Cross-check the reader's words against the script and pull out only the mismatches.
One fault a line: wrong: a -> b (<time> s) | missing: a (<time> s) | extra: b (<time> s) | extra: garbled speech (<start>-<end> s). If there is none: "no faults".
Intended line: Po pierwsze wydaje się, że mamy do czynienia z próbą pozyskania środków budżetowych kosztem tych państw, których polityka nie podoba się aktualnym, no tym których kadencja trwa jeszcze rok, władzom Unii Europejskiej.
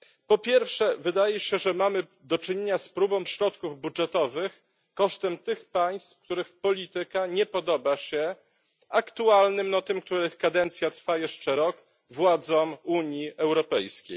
missing: pozyskania (3.2 s)